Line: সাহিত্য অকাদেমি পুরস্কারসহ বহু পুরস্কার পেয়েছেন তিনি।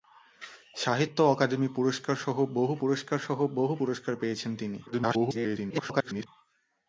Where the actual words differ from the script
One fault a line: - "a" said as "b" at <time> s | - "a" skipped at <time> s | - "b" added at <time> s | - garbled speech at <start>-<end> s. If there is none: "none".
- "পুরস্কারসহ বহু" added at 2.8 s
- garbled speech at 4.9-6.3 s